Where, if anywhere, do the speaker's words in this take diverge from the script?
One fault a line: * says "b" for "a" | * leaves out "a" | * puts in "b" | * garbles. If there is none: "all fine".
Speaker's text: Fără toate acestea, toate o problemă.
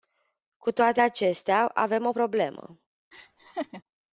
* says "Cu" for "Fără"
* says "avem" for "toate"